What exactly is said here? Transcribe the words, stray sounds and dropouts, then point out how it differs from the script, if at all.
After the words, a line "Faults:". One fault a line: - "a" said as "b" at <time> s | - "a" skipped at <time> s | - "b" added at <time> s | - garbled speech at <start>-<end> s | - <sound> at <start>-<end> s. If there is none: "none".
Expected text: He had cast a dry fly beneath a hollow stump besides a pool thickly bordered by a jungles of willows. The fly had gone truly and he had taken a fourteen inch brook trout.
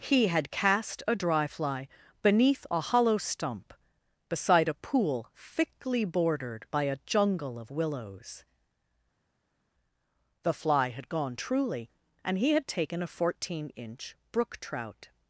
He had cast a dry fly beneath a hollow stump beside a pool thickly bordered by a jungle of willows. The fly had gone truly and he had taken a fourteen inch brook trout.
Faults:
- "besides" said as "beside" at 4.3 s
- "jungles" said as "jungle" at 7.0 s